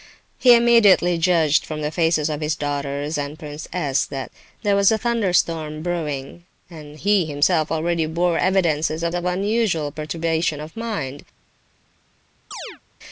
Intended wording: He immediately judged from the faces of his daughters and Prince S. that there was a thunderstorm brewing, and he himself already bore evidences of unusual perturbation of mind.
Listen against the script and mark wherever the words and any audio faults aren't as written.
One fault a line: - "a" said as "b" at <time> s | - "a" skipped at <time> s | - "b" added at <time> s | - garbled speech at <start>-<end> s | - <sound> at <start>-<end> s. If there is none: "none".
- "of" added at 9.1 s
- chirp at 12.5-12.8 s